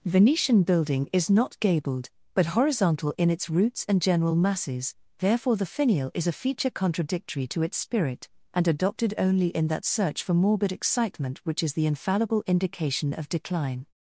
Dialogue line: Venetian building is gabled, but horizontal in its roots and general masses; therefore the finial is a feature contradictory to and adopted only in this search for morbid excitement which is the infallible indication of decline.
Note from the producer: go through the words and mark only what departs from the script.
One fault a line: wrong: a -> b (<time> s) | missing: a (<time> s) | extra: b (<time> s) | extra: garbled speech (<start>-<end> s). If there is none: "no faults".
extra: not (1.3 s)
extra: its spirit (7.6 s)
wrong: this -> that (9.7 s)